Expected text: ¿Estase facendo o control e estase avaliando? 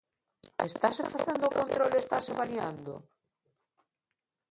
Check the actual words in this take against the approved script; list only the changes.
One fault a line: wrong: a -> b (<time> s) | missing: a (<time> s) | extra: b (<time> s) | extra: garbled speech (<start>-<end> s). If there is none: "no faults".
no faults